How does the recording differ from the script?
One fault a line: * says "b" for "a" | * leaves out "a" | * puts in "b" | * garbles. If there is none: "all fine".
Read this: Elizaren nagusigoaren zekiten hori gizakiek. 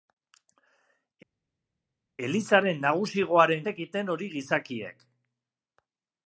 all fine